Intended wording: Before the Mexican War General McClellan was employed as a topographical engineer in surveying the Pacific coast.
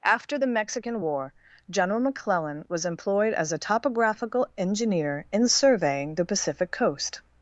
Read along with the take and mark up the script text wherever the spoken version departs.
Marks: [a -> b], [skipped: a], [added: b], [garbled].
[Before -> After] the Mexican War General McClellan was employed as a topographical engineer in surveying the Pacific coast.